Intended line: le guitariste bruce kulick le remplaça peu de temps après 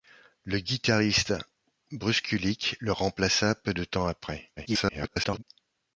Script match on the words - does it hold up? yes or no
no